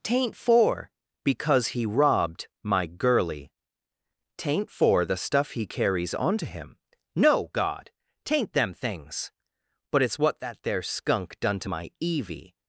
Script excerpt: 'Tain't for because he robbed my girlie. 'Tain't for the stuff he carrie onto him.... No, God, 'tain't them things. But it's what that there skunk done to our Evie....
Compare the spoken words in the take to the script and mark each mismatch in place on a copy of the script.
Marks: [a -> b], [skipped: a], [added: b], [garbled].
'Tain't for because he robbed my girlie. 'Tain't for the stuff he [carrie -> carries] onto him.... No, God, 'tain't them things. But it's what that there skunk done to [our -> my] Evie....